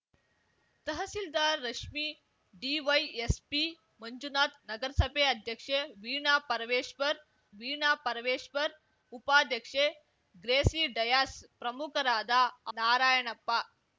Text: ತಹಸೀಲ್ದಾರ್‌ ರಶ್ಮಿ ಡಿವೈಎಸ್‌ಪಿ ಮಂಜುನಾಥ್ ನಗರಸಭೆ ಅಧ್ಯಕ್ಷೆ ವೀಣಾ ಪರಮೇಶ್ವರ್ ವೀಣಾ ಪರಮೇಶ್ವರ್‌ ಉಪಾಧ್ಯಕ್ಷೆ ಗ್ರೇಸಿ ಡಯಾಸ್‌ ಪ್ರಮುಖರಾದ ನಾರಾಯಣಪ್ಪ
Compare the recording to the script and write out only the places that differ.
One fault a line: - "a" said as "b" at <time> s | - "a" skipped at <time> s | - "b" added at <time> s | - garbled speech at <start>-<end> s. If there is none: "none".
none